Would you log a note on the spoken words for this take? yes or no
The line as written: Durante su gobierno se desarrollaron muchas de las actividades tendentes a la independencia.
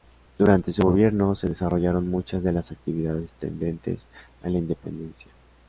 no